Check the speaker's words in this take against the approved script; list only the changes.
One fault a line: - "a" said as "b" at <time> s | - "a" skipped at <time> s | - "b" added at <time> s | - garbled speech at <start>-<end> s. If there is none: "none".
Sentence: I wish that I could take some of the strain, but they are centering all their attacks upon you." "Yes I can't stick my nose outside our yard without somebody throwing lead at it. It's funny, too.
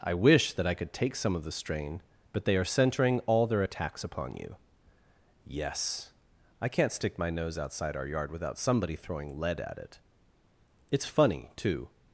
none